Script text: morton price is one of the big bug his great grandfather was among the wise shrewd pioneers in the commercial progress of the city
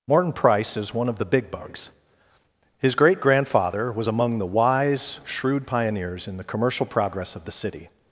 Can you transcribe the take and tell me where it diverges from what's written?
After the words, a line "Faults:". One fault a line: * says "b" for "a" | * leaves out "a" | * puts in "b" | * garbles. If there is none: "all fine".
morton price is one of the big bugs his great grandfather was among the wise shrewd pioneers in the commercial progress of the city
Faults:
* says "bugs" for "bug"